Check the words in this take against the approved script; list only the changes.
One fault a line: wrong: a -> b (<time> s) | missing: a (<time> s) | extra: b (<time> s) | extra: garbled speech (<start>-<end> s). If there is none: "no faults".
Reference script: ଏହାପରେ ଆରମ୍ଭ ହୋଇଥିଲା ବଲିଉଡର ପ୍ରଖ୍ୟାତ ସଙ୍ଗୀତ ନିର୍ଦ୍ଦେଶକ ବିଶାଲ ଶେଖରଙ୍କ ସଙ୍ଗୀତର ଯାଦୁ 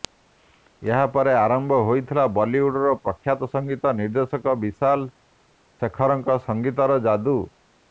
no faults